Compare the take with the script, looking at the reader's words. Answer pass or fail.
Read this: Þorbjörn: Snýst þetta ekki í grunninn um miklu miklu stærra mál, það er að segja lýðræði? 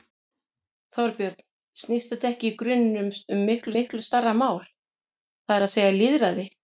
pass